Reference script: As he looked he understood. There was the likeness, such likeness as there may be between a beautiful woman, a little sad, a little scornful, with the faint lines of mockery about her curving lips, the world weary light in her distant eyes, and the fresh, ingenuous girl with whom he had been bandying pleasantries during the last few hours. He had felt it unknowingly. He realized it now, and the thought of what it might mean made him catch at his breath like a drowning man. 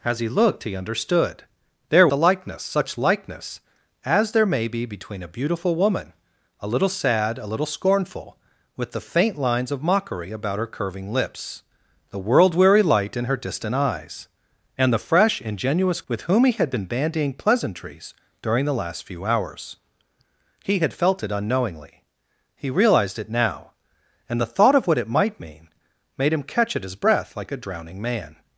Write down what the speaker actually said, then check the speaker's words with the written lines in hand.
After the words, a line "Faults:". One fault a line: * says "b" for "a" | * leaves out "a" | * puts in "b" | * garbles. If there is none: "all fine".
As he looked he understood. There the likeness, such likeness as there may be between a beautiful woman, a little sad, a little scornful, with the faint lines of mockery about her curving lips, the world weary light in her distant eyes, and the fresh, ingenuous with whom he had been bandying pleasantries during the last few hours. He had felt it unknowingly. He realized it now, and the thought of what it might mean made him catch at his breath like a drowning man.
Faults:
* leaves out "was"
* leaves out "girl"